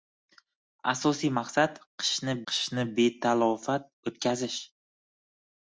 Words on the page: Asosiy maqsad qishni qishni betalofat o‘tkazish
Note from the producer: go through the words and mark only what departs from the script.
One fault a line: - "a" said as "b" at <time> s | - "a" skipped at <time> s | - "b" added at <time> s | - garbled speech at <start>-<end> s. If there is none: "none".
none